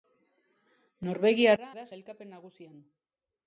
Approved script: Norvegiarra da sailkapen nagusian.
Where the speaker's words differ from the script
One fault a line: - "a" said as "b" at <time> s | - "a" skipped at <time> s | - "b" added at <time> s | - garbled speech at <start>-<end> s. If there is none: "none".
none